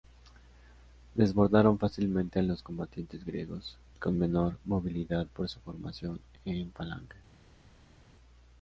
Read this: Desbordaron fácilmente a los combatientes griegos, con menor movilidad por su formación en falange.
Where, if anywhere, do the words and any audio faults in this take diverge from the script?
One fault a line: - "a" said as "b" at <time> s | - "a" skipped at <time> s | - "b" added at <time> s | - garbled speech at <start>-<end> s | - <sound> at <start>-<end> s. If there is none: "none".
none